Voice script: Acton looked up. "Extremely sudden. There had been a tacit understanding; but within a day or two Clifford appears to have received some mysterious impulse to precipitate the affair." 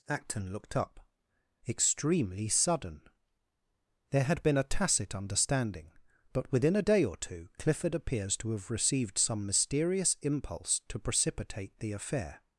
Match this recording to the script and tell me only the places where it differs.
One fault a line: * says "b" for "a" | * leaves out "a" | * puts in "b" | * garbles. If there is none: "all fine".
all fine